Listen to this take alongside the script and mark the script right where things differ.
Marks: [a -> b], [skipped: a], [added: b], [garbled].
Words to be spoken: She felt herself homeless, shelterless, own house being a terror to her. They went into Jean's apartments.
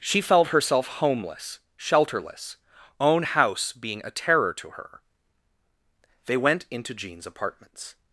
She felt herself homeless, shelterless, own house being a terror to her. They went into Jean's apartments.